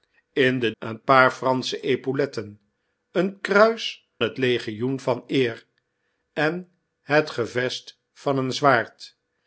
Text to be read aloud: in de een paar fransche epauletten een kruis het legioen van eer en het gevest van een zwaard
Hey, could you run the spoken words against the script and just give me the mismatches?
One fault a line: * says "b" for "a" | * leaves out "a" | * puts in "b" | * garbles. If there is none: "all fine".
all fine